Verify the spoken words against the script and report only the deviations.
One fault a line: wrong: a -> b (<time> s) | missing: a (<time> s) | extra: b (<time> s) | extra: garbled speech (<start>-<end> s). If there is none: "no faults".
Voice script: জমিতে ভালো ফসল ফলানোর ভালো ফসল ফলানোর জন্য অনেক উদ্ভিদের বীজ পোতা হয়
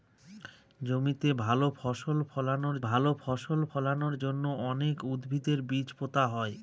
no faults